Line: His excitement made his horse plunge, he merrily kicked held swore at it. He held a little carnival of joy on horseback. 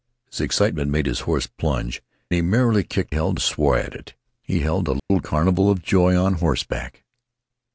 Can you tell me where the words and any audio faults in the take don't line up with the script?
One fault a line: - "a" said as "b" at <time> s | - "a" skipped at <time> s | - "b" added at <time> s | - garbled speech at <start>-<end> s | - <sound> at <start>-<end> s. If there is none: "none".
- dropout at 5.0-5.1 s